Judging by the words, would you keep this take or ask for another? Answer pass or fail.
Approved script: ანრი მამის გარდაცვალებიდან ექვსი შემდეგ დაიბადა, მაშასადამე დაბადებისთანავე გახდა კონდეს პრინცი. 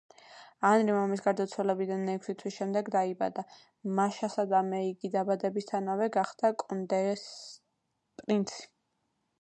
fail